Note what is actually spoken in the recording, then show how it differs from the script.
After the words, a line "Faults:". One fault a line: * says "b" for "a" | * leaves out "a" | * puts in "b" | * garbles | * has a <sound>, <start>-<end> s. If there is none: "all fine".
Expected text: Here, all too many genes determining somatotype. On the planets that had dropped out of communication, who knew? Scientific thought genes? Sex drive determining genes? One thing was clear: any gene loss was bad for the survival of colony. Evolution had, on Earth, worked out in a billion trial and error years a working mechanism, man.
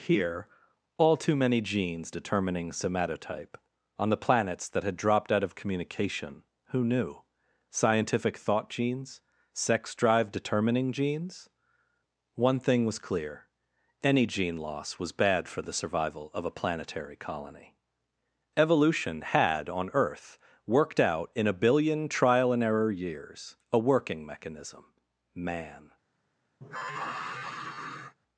Here, all too many genes determining somatotype. On the planets that had dropped out of communication, who knew? Scientific thought genes? Sex drive determining genes? One thing was clear: any gene loss was bad for the survival of a planetary colony. Evolution had, on Earth, worked out in a billion trial and error years a working mechanism, man.
Faults:
* puts in "a planetary"
* has a sigh, 26.6-28.2 s